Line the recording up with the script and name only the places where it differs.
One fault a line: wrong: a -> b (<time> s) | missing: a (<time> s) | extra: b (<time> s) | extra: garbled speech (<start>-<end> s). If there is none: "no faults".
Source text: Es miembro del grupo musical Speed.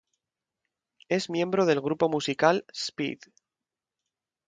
no faults